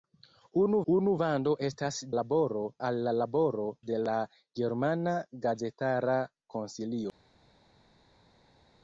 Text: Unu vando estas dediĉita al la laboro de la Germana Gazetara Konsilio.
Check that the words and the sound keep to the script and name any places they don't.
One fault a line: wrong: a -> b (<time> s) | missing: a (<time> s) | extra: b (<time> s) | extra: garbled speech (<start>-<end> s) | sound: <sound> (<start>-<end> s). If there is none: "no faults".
extra: unu (0.9 s)
wrong: dediĉita -> laboro (2.2 s)